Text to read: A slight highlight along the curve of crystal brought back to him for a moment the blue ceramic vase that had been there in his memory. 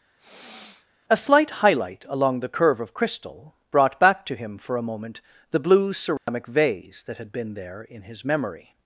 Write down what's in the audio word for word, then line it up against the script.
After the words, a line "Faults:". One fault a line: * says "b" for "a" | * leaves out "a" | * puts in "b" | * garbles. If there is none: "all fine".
A slight highlight along the curve of crystal brought back to him for a moment the blue ceramic vase that had been there in his memory.
Faults:
all fine